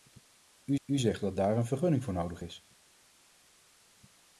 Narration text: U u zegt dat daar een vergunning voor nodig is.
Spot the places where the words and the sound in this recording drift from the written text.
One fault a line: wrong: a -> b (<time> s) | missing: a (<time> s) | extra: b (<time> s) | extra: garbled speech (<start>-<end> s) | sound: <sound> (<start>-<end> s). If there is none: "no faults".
no faults